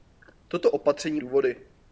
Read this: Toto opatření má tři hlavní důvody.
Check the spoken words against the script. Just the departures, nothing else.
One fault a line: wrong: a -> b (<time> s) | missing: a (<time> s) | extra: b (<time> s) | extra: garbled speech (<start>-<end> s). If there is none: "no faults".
missing: má tři hlavní (1.2 s)